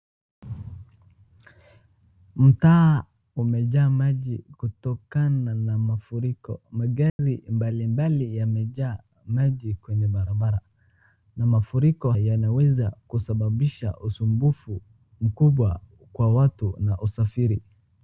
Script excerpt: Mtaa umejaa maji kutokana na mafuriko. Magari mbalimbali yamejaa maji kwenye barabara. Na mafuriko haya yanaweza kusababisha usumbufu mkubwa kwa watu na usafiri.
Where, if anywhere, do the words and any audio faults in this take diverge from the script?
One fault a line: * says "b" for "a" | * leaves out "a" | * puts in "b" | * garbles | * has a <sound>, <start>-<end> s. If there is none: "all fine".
* has a dropout, 7.1-7.2 s
* leaves out "haya"